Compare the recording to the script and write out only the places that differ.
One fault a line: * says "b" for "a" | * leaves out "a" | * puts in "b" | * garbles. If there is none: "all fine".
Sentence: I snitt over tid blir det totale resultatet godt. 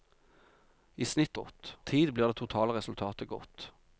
* says "godt" for "over"